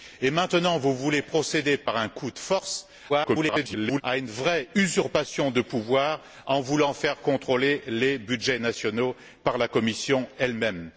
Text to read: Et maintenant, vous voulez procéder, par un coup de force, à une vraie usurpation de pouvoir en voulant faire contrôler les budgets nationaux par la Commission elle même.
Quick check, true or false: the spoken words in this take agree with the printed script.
false